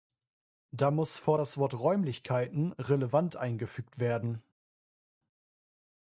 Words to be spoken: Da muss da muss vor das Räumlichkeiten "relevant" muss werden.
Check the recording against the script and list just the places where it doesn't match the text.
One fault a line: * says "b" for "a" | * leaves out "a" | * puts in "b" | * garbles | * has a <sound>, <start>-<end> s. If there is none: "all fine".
* leaves out "da muss"
* puts in "Wort"
* says "eingefügt" for "muss"